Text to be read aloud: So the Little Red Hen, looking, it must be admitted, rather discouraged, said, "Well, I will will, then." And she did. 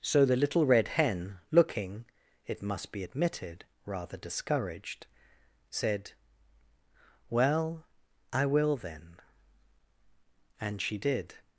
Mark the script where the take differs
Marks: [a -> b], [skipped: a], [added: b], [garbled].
So the Little Red Hen, looking, it must be admitted, rather discouraged, said, "Well, I will [skipped: will,] then." And she did.